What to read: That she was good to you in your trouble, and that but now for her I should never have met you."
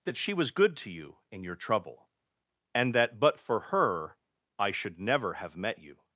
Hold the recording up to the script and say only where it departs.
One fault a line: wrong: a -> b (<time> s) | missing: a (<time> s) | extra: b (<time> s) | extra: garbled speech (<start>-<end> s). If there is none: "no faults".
missing: now (3.4 s)